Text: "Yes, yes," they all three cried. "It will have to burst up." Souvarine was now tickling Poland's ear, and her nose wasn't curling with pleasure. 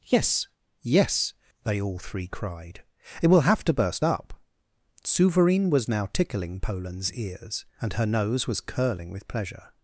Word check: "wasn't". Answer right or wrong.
wrong